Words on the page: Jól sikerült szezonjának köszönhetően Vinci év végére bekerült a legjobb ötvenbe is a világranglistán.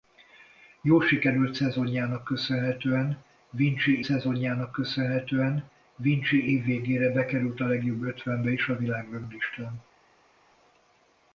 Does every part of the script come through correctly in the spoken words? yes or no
no